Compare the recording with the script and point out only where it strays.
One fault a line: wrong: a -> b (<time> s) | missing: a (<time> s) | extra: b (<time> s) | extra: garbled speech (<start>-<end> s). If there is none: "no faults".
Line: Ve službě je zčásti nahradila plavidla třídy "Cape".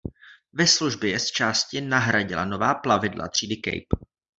extra: nová (2.5 s)